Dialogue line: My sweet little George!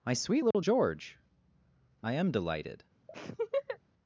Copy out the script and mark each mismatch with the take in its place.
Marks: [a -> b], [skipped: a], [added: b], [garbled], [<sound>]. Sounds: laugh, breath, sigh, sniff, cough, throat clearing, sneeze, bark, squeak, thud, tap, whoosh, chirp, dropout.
My sweet little [dropout] George! [added: I am delighted] [laugh]